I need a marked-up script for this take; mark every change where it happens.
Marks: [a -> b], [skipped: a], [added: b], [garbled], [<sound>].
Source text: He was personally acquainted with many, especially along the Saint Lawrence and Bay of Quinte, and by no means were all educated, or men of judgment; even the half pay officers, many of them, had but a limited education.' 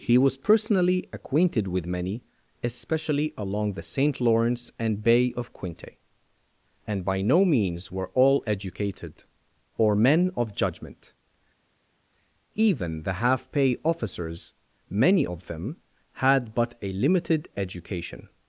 He was personally acquainted with many, especially along the Saint Lawrence and Bay of Quinte, and by no means were all educated, or men of judgment; even the half pay officers, many of them, had but a limited education.'